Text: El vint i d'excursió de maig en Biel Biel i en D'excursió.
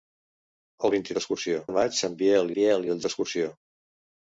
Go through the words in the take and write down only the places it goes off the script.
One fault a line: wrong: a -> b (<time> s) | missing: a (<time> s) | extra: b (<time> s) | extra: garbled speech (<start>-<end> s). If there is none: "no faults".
no faults